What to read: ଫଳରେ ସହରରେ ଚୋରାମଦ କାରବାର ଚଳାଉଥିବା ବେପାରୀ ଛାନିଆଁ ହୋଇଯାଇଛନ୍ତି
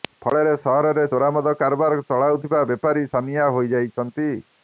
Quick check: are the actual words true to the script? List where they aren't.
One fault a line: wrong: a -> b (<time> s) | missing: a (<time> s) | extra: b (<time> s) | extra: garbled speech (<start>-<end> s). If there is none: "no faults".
no faults